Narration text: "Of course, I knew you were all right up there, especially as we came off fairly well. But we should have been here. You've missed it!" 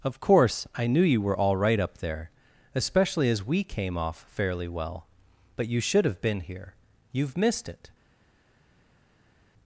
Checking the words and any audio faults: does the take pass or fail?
fail